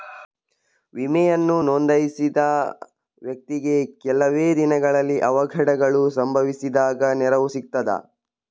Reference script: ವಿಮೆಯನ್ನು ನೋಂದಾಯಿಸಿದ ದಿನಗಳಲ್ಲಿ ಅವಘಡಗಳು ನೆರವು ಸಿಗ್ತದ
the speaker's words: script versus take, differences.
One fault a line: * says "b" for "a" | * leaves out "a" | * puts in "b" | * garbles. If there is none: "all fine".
* puts in "ವ್ಯಕ್ತಿಗೆ ಕೆಲವೆ"
* puts in "ಸಂಭವಿಸಿದಾಗ"